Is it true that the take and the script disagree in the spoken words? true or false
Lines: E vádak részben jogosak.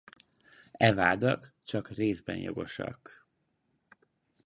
true